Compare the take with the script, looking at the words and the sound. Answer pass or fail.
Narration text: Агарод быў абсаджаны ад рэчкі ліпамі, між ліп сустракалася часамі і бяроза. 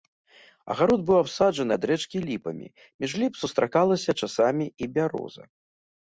pass